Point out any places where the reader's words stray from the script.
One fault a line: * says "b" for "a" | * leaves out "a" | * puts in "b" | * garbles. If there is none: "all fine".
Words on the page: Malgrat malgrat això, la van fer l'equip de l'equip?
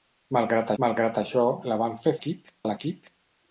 all fine